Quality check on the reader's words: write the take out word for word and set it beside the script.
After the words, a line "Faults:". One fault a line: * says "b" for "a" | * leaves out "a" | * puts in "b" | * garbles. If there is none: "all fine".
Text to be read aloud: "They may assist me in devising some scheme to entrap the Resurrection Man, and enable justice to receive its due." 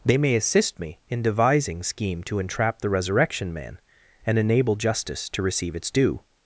"They may assist me in devising scheme to entrap the Resurrection Man, and enable justice to receive its due."
Faults:
* leaves out "some"